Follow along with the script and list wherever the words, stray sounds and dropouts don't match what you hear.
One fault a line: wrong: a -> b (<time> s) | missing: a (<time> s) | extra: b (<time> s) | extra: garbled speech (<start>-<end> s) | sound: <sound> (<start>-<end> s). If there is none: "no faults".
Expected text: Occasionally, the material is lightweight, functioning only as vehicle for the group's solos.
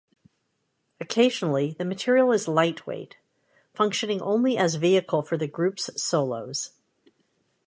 no faults